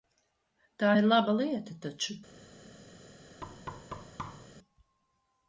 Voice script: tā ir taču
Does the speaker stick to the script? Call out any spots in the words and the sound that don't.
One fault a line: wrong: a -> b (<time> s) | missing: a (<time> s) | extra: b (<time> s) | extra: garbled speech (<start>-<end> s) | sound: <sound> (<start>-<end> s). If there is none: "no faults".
extra: laba lieta (1.1 s)
sound: thud (3.4-4.5 s)